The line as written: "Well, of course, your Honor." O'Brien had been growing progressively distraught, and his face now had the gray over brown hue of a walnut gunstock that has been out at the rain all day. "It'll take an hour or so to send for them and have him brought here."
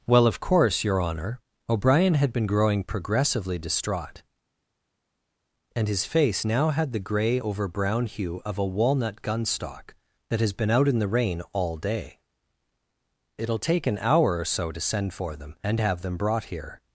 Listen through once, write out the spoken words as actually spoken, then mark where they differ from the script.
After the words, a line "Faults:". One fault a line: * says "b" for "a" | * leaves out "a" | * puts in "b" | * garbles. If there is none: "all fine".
"Well, of course, your Honor." O'Brien had been growing progressively distraught, and his face now had the gray over brown hue of a walnut gunstock that has been out in the rain all day. "It'll take an hour or so to send for them and have them brought here."
Faults:
* says "in" for "at"
* says "them" for "him"